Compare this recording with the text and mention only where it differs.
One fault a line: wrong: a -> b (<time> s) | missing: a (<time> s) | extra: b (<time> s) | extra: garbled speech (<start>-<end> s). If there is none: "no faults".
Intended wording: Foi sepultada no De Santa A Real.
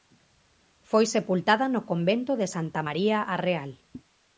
extra: Convento (1.9 s)
extra: María (2.9 s)